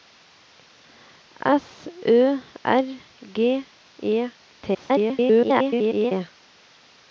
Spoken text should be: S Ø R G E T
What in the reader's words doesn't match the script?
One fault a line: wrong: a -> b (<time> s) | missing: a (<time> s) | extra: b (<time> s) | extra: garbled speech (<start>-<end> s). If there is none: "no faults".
extra: garbled speech (4.7-6.1 s)